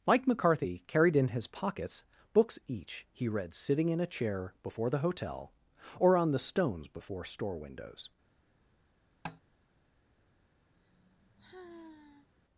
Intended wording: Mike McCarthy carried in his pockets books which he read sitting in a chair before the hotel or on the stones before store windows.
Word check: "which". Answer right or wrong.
wrong